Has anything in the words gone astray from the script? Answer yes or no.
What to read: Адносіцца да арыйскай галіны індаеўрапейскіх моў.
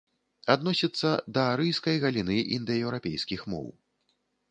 no